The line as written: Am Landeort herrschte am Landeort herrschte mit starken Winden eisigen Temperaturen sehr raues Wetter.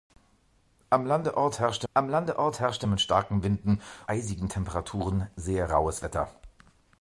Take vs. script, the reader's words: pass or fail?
pass